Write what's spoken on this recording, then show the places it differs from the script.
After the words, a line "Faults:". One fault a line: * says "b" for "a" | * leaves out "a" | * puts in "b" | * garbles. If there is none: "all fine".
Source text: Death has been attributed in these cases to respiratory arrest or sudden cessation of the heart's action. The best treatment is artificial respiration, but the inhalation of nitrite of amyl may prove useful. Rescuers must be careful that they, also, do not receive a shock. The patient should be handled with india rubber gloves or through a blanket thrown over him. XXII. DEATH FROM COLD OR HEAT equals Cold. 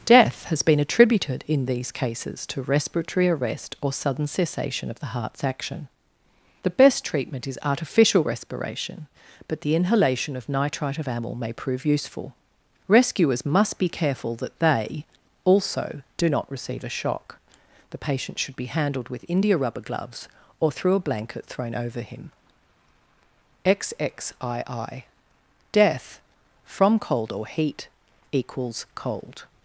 Death has been attributed in these cases to respiratory arrest or sudden cessation of the heart's action. The best treatment is artificial respiration, but the inhalation of nitrite of amyl may prove useful. Rescuers must be careful that they, also, do not receive a shock. The patient should be handled with india rubber gloves or through a blanket thrown over him. XXII. DEATH FROM COLD OR HEAT equals Cold.
Faults:
all fine